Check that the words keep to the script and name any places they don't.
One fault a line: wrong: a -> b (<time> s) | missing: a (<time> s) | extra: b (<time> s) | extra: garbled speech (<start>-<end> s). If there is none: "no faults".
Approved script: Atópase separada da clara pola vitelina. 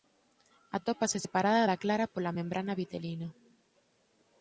extra: membrana (2.4 s)